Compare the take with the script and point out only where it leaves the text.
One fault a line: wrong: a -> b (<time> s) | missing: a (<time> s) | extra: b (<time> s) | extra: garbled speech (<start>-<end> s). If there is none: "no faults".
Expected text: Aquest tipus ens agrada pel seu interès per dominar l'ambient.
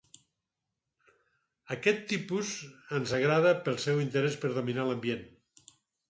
no faults